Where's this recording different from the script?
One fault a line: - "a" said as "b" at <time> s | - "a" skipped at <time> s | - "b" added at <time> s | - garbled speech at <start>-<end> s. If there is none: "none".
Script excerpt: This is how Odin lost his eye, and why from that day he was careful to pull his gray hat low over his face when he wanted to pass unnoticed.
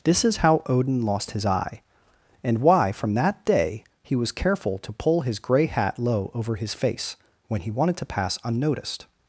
none